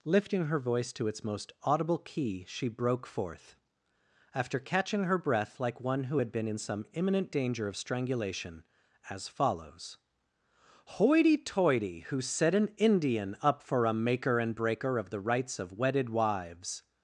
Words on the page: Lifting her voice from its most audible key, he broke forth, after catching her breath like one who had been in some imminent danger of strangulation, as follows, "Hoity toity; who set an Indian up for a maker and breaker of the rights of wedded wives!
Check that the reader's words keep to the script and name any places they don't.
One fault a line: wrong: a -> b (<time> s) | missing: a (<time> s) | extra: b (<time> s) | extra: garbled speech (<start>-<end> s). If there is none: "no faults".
wrong: from -> to (0.9 s)
wrong: he -> she (2.5 s)